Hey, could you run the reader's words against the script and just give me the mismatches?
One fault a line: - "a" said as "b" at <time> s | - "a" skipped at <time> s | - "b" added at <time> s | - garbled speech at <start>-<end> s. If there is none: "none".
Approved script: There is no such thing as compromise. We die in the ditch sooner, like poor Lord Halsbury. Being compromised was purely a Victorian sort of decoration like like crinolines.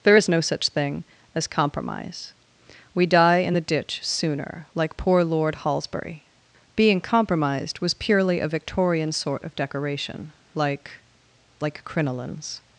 none